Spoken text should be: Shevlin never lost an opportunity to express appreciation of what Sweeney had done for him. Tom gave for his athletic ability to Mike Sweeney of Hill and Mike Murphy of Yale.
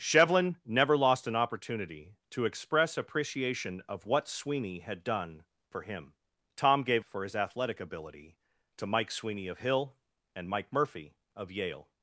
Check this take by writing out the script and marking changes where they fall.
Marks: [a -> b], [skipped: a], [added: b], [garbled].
Shevlin never lost an opportunity to express appreciation of what Sweeney had done for him. Tom gave for his athletic ability to Mike Sweeney of Hill and Mike Murphy of Yale.